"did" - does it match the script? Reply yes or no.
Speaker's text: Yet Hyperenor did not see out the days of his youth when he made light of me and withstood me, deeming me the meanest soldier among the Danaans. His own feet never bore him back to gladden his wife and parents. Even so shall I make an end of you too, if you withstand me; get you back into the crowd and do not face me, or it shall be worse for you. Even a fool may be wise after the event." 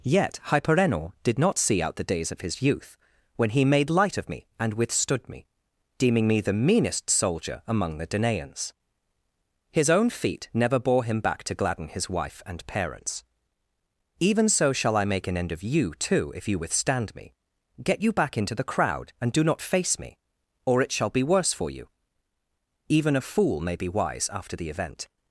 yes